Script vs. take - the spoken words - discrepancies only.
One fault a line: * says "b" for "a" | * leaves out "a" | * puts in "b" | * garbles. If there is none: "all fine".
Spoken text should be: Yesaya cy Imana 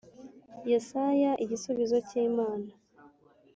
* puts in "igisubizo"